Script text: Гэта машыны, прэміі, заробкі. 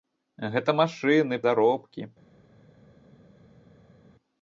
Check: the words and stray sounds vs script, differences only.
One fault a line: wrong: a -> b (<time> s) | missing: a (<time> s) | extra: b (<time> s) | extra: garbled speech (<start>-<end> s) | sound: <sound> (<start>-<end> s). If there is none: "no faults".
missing: прэміі (1.4 s)